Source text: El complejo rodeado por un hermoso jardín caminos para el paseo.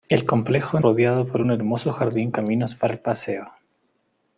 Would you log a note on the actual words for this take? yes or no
no